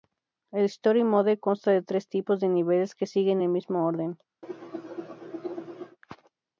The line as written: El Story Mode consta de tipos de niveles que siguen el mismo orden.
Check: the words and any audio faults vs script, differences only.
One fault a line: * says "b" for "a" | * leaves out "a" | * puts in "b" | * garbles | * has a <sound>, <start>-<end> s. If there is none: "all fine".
* puts in "tres"
* has a cough, 4.4-6.0 s